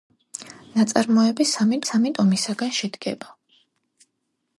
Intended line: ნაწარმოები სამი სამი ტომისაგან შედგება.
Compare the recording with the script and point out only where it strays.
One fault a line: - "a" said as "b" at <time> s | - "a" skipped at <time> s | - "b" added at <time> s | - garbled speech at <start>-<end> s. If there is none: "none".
none